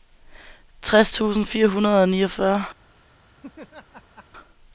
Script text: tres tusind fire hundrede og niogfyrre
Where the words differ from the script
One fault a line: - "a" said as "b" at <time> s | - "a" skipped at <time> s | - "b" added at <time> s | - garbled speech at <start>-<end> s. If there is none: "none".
none